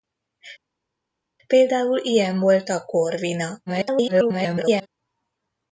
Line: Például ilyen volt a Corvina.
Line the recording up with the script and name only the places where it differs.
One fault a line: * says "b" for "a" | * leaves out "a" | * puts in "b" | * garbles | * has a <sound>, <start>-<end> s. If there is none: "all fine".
* garbles